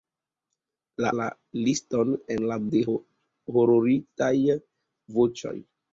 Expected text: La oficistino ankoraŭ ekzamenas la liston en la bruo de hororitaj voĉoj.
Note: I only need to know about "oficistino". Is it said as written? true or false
false